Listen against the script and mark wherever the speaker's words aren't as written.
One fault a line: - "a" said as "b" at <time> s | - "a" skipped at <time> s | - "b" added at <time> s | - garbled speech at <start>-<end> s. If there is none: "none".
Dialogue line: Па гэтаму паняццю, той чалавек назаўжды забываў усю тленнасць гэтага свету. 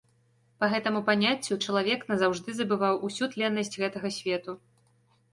- "той" skipped at 1.6 s